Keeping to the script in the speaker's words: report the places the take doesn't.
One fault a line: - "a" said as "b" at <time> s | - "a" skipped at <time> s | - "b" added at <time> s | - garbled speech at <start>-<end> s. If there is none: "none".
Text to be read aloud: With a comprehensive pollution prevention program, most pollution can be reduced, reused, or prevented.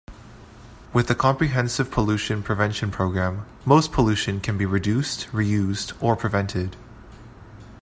none